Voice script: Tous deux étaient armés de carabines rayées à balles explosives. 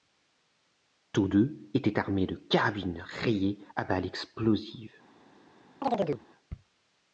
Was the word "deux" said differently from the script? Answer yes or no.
no